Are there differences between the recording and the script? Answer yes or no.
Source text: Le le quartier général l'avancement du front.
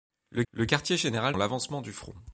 no